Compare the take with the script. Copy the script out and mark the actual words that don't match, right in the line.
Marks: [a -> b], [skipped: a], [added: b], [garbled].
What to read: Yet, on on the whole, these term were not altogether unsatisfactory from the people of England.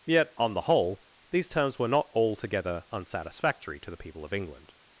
Yet, on [skipped: on] the whole, these [term -> terms] were not altogether unsatisfactory [from -> to] the people of England.